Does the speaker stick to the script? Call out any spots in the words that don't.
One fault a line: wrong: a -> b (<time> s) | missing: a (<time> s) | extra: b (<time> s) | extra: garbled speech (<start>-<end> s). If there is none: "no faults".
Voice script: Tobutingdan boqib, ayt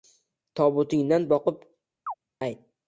no faults